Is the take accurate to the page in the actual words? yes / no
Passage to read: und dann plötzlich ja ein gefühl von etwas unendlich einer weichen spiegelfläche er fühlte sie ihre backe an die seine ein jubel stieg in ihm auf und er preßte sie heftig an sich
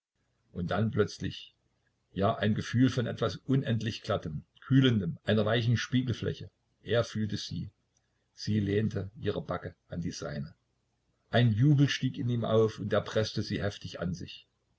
no